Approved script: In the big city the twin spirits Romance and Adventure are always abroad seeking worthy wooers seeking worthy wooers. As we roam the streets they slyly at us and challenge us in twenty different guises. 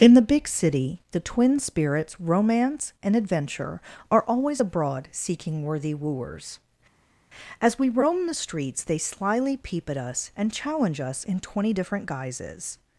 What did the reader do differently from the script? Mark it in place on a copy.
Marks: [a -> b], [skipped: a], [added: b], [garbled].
In the big city the twin spirits Romance and Adventure are always abroad seeking worthy wooers [skipped: seeking worthy wooers.] As we roam the streets they slyly [added: peep] at us and challenge us in twenty different guises.